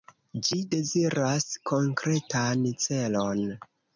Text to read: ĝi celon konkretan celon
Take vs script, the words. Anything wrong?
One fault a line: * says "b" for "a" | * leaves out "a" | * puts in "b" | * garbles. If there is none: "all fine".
* says "deziras" for "celon"